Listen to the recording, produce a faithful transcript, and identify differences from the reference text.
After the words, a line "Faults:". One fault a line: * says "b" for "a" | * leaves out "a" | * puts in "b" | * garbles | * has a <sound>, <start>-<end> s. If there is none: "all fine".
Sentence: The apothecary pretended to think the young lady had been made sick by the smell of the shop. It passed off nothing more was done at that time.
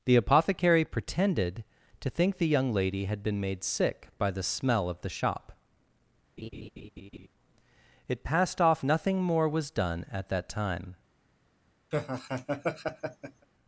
The apothecary pretended to think the young lady had been made sick by the smell of the shop. It passed off nothing more was done at that time.
Faults:
* has a laugh, 6.4-7.3 s
* has a laugh, 11.9-13.5 s